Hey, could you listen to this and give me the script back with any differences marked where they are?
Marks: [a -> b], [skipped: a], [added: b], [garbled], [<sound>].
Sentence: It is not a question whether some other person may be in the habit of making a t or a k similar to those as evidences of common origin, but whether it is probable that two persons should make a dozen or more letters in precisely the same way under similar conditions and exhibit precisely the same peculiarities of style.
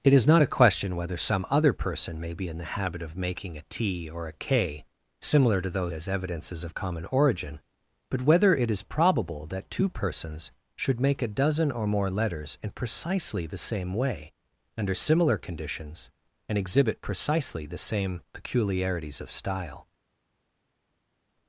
It is not a question whether some other person may be in the habit of making a t or a k similar to those as evidences of common origin, but whether it is probable that two persons should make a dozen or more letters in precisely the same way under similar conditions and exhibit precisely the same peculiarities of style.